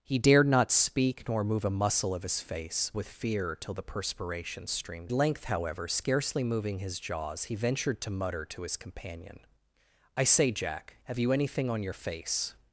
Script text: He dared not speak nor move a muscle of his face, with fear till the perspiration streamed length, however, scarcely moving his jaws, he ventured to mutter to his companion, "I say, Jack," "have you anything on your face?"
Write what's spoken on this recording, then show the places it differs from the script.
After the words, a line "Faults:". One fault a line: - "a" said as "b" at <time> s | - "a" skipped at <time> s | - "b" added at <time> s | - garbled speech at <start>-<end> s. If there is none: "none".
He dared not speak nor move a muscle of his face, with fear till the perspiration streamed length, however, scarcely moving his jaws, he ventured to mutter to his companion, "I say, Jack," "have you anything on your face?"
Faults:
none